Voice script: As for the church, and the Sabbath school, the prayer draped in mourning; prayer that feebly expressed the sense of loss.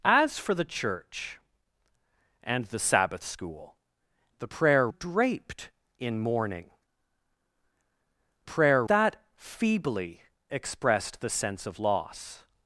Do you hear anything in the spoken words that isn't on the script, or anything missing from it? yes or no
no